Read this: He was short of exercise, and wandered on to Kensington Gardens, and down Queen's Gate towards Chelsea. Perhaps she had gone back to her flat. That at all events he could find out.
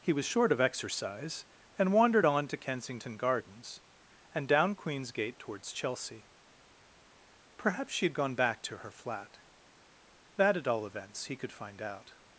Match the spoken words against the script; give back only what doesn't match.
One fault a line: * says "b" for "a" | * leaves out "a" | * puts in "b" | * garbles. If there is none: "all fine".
all fine